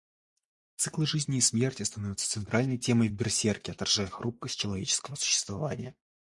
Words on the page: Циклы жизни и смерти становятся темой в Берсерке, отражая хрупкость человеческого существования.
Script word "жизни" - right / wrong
right